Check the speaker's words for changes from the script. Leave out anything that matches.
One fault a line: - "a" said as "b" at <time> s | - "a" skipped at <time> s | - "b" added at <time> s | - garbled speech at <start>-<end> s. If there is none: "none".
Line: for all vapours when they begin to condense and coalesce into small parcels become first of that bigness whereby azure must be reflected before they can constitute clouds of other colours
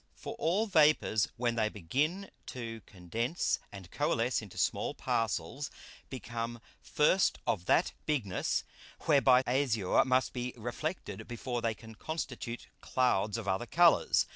none